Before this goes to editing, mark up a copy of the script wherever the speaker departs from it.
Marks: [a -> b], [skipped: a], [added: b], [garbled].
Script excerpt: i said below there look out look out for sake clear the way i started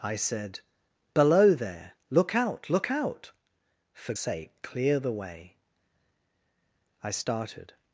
i said below there look out look out for sake clear the way i started